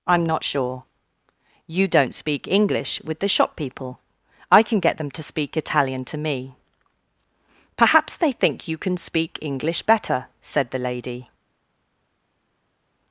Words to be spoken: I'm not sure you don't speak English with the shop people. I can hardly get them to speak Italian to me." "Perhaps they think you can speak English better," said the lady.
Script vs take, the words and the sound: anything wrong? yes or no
yes